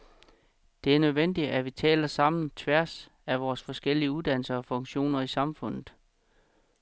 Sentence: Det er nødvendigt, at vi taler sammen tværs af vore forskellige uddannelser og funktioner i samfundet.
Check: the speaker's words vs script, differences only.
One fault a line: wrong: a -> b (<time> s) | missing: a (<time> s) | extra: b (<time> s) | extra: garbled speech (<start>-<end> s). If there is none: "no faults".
no faults